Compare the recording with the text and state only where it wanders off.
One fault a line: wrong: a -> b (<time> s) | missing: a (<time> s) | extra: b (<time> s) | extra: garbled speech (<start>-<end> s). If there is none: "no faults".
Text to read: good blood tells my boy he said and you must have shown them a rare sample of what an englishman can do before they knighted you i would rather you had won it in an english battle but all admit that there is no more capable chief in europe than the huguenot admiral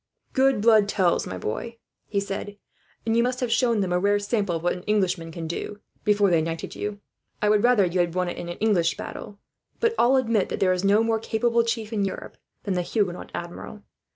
no faults